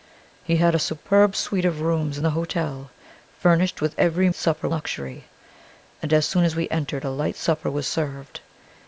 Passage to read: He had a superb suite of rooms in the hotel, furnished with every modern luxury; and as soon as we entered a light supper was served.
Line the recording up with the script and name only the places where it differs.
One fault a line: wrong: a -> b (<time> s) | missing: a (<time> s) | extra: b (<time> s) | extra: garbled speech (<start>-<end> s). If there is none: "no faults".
wrong: modern -> supper (4.3 s)